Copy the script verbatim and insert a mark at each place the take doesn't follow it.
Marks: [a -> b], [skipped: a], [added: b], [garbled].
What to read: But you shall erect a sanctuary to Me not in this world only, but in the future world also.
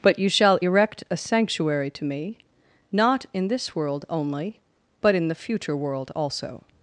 But you shall erect a sanctuary to Me not in this world only, but in the future world also.